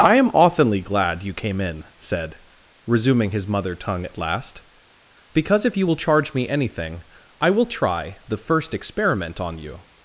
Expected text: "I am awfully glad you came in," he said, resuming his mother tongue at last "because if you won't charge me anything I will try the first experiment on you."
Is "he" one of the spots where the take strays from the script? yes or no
yes